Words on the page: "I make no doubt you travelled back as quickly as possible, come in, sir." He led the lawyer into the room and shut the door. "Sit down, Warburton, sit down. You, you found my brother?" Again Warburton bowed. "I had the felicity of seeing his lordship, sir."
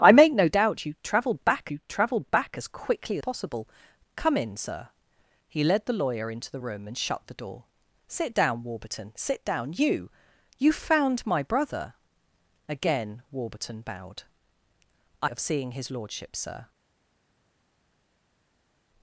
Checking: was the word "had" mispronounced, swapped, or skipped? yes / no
yes